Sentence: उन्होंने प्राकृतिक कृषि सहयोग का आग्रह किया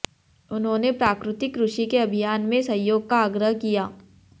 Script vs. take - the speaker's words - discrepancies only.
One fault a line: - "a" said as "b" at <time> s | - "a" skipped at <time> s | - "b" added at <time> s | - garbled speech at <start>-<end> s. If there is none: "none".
- "के अभियान में" added at 1.9 s